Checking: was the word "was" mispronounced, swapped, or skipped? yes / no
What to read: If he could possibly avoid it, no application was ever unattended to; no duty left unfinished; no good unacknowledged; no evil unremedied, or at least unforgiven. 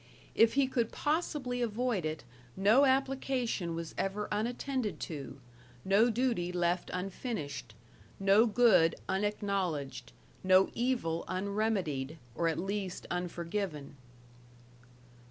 no